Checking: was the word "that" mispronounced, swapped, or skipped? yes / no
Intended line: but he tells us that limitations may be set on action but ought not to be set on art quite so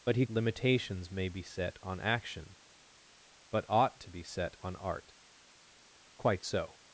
yes